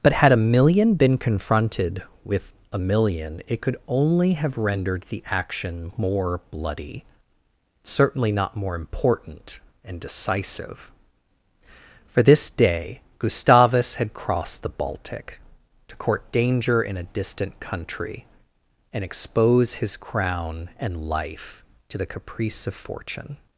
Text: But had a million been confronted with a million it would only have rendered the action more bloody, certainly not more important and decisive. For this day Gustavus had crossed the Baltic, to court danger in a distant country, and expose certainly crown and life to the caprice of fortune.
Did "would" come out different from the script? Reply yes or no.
yes